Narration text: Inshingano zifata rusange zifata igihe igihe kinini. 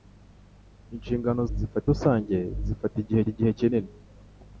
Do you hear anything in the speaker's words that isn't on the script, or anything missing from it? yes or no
no